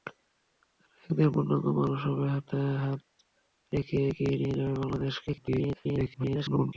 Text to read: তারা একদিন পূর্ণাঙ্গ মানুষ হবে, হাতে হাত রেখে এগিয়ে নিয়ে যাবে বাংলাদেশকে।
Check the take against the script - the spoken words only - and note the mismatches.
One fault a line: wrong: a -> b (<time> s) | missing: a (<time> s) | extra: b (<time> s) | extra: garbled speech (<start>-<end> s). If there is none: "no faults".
extra: garbled speech (5.3-6.7 s)